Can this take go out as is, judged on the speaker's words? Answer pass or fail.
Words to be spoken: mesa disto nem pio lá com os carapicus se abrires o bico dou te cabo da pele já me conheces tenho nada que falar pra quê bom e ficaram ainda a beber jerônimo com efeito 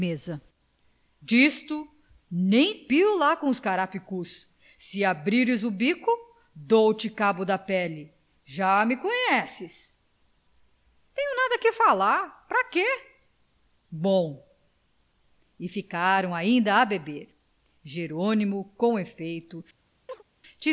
pass